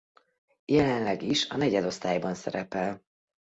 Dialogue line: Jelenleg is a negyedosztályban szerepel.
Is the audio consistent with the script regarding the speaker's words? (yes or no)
yes